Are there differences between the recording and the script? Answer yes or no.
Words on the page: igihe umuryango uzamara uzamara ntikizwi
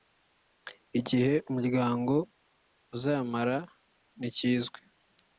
yes